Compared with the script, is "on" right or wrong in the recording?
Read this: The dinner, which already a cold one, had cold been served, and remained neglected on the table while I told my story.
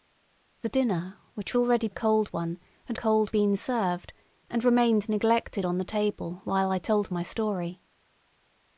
right